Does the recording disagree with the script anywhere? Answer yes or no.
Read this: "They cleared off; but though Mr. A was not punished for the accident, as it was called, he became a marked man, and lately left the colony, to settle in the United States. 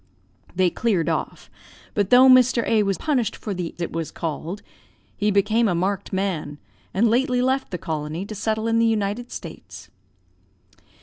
yes